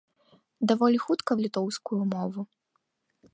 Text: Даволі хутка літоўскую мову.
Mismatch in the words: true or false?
false